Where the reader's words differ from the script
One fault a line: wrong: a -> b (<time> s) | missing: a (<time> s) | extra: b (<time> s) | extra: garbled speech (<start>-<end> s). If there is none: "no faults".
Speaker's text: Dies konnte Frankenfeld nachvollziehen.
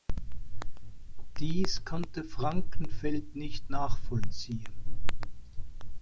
extra: nicht (3.4 s)